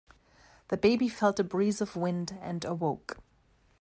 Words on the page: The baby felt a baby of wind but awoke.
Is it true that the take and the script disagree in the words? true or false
true